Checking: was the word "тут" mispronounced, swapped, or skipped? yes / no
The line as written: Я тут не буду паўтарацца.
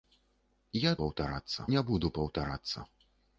yes